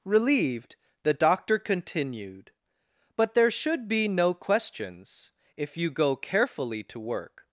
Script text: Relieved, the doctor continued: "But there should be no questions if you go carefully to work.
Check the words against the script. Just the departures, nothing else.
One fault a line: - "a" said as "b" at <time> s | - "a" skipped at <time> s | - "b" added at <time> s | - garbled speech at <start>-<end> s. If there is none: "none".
none